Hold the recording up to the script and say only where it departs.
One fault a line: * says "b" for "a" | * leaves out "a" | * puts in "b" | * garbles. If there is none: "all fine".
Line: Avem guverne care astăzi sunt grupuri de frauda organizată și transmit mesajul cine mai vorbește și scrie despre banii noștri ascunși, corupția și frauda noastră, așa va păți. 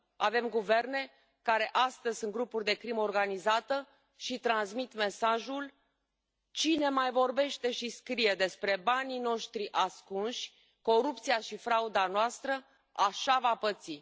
* says "crimă" for "frauda"